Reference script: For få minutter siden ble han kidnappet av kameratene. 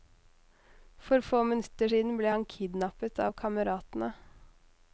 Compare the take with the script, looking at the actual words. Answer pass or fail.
pass